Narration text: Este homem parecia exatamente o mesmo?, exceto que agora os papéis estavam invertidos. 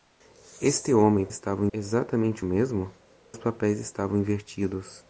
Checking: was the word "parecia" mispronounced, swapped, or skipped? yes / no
yes